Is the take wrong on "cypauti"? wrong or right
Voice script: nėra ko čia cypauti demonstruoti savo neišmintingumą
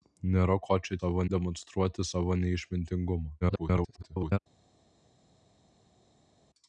wrong